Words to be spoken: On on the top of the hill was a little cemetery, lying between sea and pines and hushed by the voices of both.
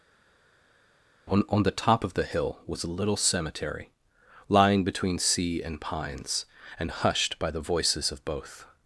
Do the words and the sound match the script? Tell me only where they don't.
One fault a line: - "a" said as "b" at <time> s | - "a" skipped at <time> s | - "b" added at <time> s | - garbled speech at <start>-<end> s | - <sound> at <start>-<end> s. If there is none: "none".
none